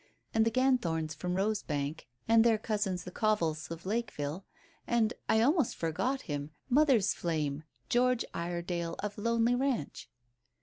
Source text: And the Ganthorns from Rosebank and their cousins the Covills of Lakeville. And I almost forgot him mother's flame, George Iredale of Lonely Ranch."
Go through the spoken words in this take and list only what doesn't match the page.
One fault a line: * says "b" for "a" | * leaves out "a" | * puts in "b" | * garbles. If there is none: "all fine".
all fine